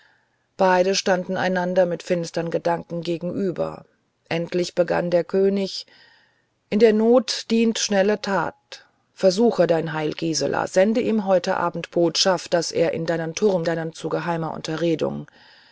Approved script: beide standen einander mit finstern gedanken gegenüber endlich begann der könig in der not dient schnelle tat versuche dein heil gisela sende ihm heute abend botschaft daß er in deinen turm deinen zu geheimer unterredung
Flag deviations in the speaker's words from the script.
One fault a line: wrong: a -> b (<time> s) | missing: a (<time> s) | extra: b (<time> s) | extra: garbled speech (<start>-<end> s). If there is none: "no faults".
no faults